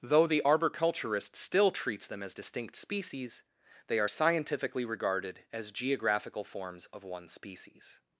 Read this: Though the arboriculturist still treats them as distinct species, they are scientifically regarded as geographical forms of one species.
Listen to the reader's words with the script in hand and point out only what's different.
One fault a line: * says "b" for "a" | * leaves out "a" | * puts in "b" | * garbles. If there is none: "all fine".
all fine